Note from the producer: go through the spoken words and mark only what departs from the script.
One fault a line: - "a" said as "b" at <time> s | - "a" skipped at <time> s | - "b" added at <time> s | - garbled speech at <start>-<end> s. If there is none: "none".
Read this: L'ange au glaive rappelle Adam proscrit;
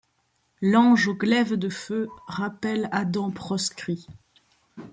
- "de feu" added at 1.5 s